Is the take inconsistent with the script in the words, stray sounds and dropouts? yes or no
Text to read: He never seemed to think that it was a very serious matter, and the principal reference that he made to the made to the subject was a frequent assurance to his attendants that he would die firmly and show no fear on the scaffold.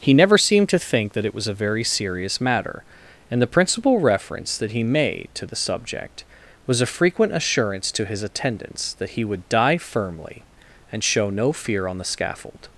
yes